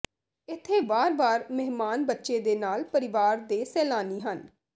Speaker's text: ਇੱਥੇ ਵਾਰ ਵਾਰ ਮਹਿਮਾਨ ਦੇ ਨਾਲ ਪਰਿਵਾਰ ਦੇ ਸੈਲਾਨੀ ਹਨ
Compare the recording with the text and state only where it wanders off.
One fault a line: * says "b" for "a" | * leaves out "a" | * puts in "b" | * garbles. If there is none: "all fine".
* puts in "ਬੱਚੇ"